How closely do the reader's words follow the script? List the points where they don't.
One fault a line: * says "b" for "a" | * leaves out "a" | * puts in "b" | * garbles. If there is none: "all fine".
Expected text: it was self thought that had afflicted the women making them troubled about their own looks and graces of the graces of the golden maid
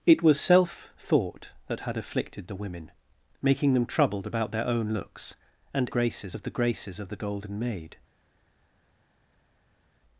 all fine